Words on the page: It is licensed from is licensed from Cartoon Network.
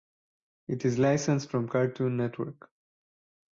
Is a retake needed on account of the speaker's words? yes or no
yes